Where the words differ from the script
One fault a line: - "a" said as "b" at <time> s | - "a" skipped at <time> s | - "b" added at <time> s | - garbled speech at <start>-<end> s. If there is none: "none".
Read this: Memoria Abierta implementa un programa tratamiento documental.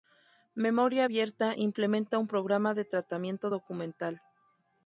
- "de" added at 2.7 s